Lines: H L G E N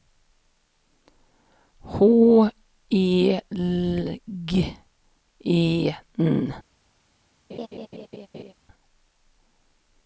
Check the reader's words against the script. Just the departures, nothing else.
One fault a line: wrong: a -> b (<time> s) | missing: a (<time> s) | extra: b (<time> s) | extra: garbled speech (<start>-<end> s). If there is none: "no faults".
extra: E (2.9 s)